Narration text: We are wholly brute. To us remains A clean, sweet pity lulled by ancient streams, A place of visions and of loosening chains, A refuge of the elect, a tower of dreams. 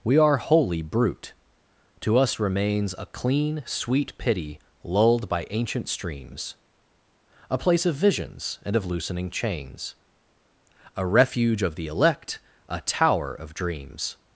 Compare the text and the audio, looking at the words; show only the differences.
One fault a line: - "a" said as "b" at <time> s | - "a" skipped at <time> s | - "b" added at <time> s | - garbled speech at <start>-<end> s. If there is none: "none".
none